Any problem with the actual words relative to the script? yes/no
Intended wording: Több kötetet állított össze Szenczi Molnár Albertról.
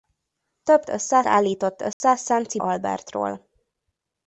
yes